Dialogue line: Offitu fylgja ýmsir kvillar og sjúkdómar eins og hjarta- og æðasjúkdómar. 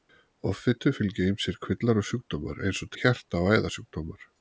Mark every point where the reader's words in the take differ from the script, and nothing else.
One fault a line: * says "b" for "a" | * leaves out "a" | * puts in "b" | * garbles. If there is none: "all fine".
all fine